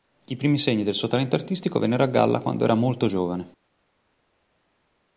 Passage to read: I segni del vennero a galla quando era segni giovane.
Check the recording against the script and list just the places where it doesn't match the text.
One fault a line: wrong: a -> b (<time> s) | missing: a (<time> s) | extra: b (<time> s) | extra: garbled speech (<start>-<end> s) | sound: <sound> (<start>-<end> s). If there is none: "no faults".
extra: primi (0.3 s)
extra: suo talento artistico (0.9 s)
wrong: segni -> molto (2.7 s)